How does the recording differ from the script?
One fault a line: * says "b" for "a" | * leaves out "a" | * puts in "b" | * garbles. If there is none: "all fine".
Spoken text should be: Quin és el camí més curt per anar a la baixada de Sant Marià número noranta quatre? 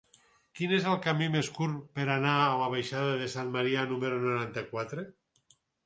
all fine